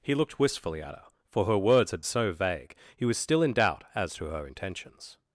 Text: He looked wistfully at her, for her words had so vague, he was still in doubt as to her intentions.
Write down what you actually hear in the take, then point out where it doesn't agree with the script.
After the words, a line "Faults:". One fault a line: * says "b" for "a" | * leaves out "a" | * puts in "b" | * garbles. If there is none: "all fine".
He looked wistfully at her, for her words had so vague, he was still in doubt as to her intentions.
Faults:
all fine